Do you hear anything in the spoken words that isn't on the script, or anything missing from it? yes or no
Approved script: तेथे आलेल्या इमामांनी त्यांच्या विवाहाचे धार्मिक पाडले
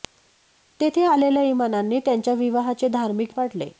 no